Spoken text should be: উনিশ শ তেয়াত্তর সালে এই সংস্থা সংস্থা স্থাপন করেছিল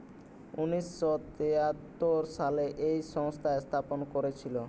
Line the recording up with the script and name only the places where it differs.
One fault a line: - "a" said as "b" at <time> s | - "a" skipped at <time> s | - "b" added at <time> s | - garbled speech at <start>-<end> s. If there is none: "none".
- "সংস্থা" skipped at 3.5 s